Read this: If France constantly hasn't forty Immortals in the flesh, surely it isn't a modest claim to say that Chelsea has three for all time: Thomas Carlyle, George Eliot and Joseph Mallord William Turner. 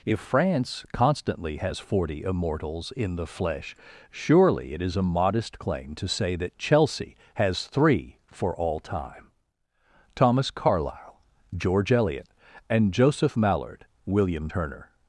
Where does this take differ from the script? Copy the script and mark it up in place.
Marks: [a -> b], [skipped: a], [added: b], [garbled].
If France constantly [hasn't -> has] forty Immortals in the flesh, surely it [isn't -> is] a modest claim to say that Chelsea has three for all time: Thomas Carlyle, George Eliot and Joseph Mallord William Turner.